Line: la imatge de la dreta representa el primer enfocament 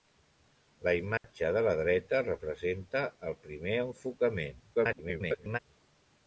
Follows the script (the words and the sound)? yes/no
no